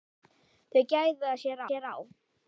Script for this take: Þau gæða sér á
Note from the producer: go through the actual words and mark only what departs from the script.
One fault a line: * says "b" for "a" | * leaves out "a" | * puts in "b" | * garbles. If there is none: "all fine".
* puts in "sér"